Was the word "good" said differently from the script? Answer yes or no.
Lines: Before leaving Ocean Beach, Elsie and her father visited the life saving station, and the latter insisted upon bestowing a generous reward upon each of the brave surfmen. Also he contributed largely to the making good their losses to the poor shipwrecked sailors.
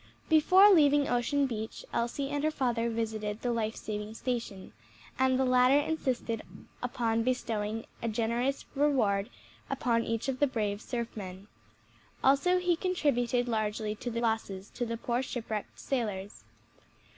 yes